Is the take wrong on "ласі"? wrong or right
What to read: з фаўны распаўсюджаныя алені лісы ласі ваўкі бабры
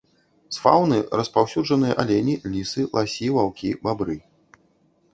right